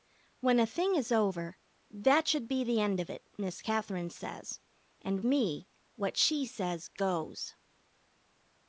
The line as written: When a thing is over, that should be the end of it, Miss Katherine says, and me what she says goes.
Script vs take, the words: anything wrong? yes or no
no